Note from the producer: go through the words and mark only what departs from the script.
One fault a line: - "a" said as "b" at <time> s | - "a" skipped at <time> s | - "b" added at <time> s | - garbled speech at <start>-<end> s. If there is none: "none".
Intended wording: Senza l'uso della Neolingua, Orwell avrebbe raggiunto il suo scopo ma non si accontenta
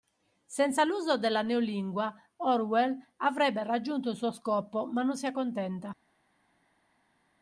none